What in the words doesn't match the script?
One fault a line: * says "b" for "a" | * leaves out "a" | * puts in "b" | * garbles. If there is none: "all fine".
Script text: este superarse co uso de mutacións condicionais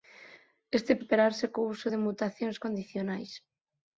all fine